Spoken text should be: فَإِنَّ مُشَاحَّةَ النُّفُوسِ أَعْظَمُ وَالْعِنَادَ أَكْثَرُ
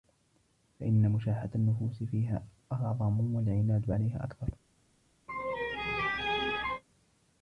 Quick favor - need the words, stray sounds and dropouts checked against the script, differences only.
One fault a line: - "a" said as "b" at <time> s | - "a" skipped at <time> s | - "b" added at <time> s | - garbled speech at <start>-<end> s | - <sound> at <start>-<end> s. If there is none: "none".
- "فِيهَا" added at 2.0 s
- "عَلَيْهَا" added at 3.9 s
- laugh at 5.3-6.8 s